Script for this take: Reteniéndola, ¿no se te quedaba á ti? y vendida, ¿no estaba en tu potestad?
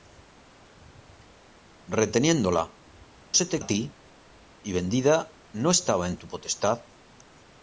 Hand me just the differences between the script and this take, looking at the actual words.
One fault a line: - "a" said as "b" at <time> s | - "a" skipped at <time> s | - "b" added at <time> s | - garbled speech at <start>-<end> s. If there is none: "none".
- "no" skipped at 2.6 s
- "quedaba" skipped at 3.6 s